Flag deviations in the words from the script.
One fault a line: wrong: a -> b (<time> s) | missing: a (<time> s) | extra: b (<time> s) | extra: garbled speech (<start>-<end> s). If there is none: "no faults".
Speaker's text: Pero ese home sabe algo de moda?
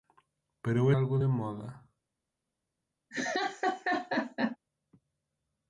missing: ese home sabe (0.9 s)